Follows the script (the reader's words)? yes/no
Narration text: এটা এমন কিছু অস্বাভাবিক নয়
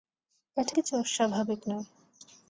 no